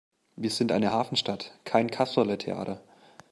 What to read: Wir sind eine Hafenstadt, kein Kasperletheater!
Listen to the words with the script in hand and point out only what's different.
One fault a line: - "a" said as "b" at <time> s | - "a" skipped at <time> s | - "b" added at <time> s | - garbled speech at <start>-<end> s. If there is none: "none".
none